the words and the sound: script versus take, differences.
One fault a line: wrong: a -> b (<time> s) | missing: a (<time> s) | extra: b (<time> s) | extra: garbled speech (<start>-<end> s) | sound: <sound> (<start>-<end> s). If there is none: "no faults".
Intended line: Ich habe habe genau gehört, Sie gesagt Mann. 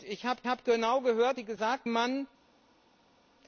no faults